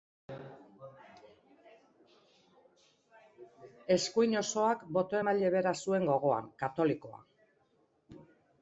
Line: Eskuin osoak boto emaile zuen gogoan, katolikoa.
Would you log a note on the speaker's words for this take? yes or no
yes